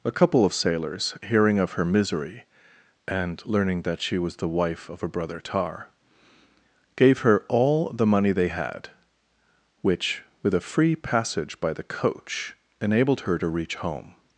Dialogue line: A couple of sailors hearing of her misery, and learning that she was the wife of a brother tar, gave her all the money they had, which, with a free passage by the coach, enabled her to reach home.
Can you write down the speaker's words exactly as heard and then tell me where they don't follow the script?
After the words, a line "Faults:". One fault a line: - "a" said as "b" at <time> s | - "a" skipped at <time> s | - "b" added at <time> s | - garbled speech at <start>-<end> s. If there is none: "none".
A couple of sailors hearing of her misery, and learning that she was the wife of a brother tar, gave her all the money they had, which, with a free passage by the coach, enabled her to reach home.
Faults:
none